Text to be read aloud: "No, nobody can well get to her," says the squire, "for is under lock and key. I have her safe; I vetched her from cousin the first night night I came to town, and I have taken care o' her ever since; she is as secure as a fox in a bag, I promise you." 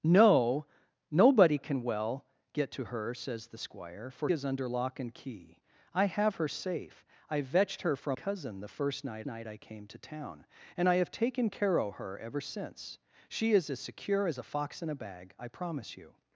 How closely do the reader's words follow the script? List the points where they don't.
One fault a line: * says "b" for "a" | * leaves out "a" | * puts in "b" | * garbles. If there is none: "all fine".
all fine